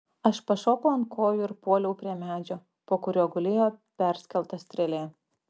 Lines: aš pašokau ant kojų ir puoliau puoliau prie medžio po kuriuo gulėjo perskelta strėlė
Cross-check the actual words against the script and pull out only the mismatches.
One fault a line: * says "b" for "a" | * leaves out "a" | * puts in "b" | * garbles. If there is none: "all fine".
* leaves out "puoliau"